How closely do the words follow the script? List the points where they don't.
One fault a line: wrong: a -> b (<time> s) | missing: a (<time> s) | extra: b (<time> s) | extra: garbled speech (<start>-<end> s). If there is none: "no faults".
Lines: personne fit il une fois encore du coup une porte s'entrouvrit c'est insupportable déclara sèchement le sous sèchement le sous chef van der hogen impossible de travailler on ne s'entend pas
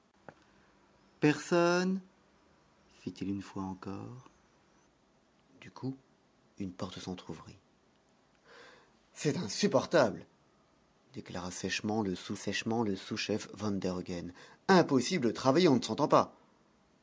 no faults